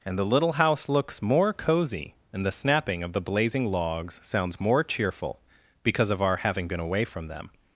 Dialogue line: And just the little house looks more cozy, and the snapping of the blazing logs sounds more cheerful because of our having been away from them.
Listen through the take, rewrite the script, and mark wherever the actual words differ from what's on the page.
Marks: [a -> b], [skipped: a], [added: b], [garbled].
And [skipped: just] the little house looks more cozy, and the snapping of the blazing logs sounds more cheerful because of our having been away from them.